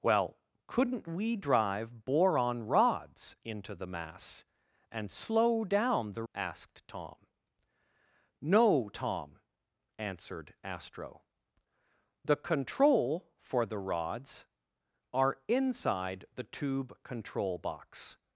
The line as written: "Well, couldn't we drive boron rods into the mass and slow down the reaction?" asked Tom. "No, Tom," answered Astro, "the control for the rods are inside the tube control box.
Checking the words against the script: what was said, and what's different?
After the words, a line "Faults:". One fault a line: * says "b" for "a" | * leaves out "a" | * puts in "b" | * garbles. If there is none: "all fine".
"Well, couldn't we drive boron rods into the mass and slow down the?" asked Tom. "No, Tom," answered Astro, "the control for the rods are inside the tube control box.
Faults:
* leaves out "reaction"